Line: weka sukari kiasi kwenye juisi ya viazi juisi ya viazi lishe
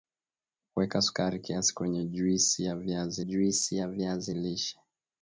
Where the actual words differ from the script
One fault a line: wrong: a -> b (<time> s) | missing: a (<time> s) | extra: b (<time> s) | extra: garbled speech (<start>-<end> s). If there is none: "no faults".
no faults